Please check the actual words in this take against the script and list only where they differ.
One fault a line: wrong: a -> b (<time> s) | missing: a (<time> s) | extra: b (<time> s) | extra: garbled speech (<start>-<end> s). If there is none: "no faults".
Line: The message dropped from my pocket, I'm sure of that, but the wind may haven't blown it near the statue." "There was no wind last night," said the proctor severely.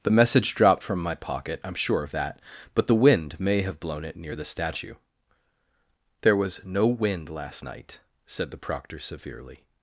wrong: haven't -> have (3.6 s)